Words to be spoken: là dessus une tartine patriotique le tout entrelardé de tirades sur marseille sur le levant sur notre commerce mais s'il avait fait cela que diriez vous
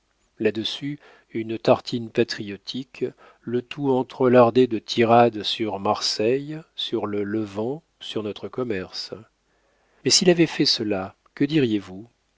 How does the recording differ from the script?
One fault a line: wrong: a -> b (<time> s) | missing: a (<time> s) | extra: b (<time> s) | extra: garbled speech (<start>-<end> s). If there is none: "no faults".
no faults